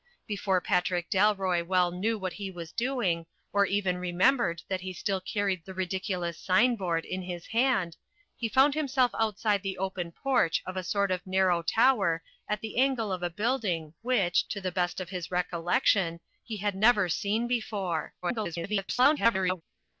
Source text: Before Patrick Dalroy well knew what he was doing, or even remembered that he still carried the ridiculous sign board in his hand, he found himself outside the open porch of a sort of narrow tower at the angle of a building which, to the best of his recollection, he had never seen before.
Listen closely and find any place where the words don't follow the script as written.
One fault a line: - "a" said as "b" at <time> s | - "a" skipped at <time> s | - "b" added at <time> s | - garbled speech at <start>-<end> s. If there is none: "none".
- garbled speech at 18.2-19.6 s